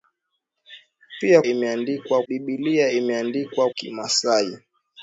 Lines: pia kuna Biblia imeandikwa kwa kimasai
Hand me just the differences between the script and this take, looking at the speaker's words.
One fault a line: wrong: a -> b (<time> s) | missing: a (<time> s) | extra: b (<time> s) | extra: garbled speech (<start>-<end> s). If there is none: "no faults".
wrong: kuna -> imeandikwa (1.4 s)
missing: kwa (3.7 s)